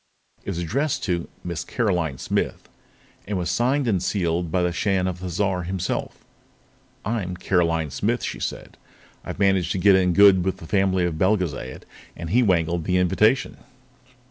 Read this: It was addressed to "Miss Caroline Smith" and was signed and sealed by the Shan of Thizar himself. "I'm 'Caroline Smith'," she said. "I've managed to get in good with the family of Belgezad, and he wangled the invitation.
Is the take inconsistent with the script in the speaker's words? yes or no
no